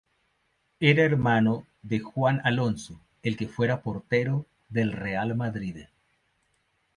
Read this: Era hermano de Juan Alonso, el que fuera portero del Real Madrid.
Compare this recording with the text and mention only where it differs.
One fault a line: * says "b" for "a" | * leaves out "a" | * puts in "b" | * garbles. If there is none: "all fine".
all fine